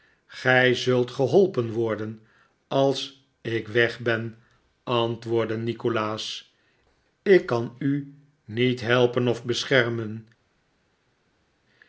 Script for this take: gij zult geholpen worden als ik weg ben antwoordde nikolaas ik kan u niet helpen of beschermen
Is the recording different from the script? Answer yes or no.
no